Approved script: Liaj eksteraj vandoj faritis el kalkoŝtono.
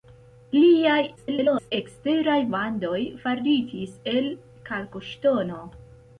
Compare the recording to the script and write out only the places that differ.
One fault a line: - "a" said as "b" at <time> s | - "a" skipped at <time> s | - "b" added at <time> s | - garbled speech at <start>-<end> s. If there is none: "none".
- garbled speech at 1.2-1.7 s